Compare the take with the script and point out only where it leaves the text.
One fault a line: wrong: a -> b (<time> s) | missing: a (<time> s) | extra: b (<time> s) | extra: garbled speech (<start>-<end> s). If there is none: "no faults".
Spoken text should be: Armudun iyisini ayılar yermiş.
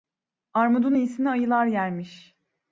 no faults